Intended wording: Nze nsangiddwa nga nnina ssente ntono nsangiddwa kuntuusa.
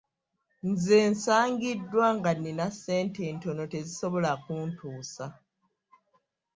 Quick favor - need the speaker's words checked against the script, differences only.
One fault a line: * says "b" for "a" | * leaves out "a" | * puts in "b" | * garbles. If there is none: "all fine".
* says "tezisobola" for "nsangiddwa"